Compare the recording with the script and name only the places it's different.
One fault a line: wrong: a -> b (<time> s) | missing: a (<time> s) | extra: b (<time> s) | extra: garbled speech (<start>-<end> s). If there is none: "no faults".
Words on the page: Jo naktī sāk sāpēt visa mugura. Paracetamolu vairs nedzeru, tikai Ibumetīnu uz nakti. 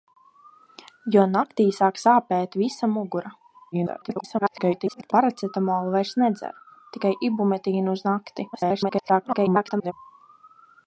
extra: garbled speech (3.7-5.1 s)
extra: garbled speech (8.5-9.9 s)